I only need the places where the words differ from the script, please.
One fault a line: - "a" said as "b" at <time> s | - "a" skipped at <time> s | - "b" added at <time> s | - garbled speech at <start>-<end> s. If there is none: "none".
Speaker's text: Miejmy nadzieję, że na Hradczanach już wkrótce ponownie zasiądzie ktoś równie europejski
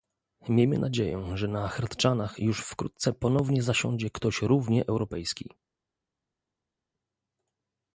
none